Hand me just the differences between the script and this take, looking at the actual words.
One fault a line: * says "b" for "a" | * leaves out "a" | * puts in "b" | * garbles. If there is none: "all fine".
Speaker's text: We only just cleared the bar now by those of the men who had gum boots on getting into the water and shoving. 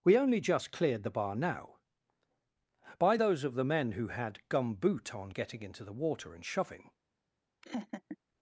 * says "boot" for "boots"